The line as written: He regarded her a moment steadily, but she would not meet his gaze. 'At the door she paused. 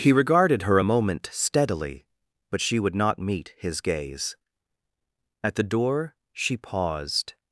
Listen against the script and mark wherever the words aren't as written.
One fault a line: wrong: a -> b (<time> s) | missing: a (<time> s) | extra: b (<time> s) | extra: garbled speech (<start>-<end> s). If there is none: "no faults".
no faults